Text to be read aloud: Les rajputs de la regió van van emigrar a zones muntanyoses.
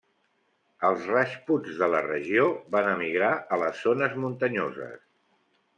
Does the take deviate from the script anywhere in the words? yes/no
yes